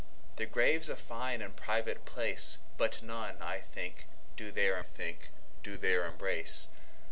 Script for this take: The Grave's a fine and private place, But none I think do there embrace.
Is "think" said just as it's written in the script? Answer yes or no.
yes